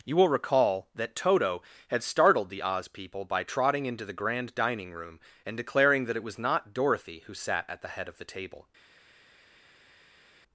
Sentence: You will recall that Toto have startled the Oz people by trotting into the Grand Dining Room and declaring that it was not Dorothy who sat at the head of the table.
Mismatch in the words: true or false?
true